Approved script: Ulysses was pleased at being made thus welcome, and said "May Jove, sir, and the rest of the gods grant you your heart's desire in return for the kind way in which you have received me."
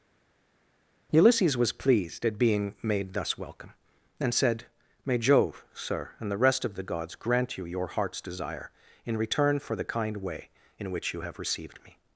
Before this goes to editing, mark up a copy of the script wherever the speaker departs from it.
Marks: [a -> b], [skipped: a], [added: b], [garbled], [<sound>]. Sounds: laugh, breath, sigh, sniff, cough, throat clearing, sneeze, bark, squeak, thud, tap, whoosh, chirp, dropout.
Ulysses was pleased at being made thus welcome, and said "May Jove, sir, and the rest of the gods grant you your heart's desire in return for the kind way in which you have received me."